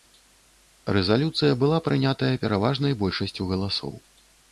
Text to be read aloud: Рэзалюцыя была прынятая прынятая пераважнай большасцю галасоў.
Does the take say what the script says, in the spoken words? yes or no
no